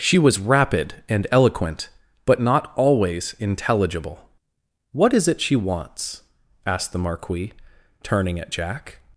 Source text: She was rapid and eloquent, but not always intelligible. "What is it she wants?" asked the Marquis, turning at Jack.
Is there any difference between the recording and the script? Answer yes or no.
no